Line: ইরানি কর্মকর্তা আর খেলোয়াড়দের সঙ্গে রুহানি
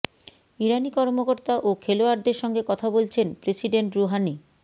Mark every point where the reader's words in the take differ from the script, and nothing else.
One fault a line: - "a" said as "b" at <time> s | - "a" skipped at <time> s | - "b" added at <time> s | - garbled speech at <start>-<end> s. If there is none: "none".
- "আর" said as "ও" at 1.6 s
- "কথা বলছেন প্রেসিডেন্ট" added at 2.7 s